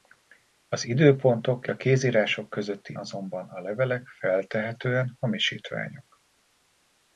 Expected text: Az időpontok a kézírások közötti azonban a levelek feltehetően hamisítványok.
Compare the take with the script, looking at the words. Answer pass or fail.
pass